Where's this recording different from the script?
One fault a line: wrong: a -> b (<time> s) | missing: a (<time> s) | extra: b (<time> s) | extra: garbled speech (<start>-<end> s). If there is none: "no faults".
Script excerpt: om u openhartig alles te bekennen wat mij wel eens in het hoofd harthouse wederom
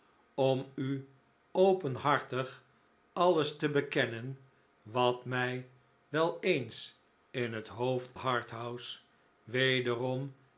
no faults